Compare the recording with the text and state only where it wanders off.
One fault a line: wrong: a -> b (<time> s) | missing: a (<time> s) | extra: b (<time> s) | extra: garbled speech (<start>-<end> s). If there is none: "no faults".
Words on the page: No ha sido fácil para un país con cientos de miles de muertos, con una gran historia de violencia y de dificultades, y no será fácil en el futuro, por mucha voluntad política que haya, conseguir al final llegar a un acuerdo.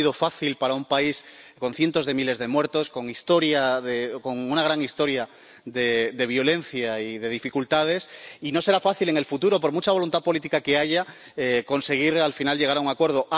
no faults